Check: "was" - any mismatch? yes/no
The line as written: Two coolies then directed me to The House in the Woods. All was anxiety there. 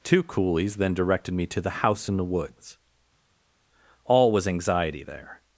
no